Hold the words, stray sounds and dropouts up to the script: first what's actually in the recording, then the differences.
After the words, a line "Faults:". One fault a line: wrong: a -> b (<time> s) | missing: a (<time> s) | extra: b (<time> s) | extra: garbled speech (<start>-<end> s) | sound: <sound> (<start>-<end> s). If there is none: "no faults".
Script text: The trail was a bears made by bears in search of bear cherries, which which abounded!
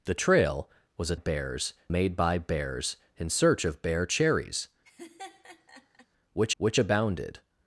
The trail was a bears made by bears in search of bear cherries, which which abounded!
Faults:
sound: laugh (4.8-6.1 s)